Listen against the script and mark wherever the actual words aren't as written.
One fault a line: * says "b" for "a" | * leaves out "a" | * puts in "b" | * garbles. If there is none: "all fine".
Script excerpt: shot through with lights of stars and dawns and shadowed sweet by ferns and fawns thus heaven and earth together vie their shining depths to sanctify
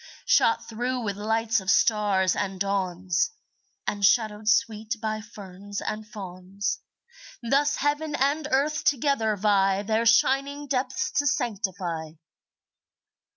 all fine